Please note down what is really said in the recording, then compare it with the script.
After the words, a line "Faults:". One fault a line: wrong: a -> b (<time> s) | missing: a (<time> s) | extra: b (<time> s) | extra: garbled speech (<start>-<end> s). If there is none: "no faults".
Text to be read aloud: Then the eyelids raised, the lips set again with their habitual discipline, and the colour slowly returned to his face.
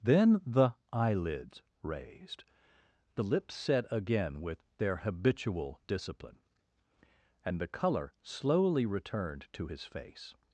Then the eyelids raised, the lips set again with their habitual discipline, and the colour slowly returned to his face.
Faults:
no faults